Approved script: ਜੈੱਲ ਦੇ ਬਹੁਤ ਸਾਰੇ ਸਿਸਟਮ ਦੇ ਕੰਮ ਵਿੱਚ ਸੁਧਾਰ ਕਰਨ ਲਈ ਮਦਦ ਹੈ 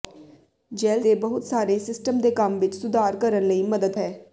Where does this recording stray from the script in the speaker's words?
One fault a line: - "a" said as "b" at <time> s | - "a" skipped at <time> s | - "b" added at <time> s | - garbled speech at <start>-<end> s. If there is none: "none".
none